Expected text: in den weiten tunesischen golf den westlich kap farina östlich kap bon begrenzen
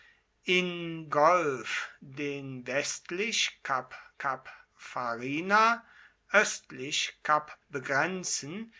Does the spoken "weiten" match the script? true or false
false